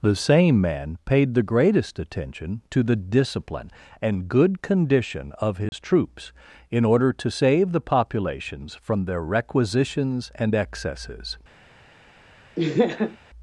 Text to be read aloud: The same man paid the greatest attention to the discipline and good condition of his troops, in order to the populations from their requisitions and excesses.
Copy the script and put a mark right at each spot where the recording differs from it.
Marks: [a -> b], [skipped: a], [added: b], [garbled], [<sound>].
The same man paid the greatest attention to the discipline and good condition of his [dropout] troops, in order to [added: save] the populations from their requisitions and excesses. [laugh]